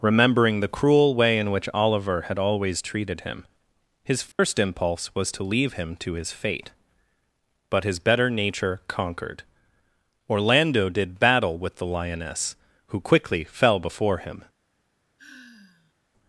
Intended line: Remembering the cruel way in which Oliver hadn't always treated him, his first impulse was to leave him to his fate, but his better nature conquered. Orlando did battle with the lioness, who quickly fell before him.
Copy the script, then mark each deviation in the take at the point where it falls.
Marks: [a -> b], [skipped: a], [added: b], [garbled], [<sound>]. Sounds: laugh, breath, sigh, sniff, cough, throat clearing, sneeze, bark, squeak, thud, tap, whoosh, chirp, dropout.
Remembering the cruel way in which Oliver [hadn't -> had] always treated him, his first [dropout] impulse was to leave him to his fate, but his better nature conquered. Orlando did battle with the lioness, who quickly fell before him. [sigh]